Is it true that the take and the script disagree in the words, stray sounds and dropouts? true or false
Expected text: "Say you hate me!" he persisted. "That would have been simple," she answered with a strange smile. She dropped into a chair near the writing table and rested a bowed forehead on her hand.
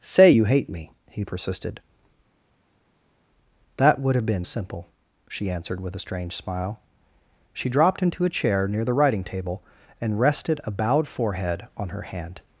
false